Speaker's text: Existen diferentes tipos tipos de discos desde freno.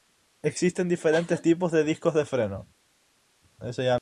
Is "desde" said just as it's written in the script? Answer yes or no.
no